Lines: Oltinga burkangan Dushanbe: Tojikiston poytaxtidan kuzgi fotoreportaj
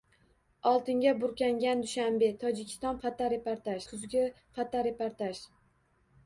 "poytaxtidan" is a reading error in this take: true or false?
true